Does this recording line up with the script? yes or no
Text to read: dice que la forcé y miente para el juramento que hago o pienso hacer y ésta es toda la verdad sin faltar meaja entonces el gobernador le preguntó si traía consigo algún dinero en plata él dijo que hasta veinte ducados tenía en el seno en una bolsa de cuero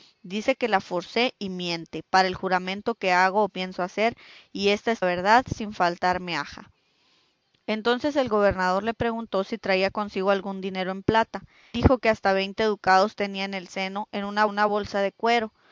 no